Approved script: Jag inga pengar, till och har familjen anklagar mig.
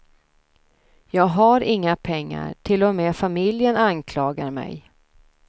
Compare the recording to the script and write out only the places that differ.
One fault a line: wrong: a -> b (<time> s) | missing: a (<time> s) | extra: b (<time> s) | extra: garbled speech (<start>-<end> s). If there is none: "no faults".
extra: har (1.2 s)
wrong: har -> med (3.0 s)